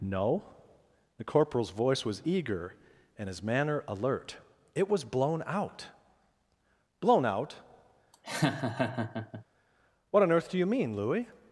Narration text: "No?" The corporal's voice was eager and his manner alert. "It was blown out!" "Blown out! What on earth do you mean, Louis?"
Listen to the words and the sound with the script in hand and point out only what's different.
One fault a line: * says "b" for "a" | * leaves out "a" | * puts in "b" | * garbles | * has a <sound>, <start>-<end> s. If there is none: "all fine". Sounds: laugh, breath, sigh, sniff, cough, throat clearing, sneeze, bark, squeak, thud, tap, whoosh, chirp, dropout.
* has a laugh, 8.1-9.4 s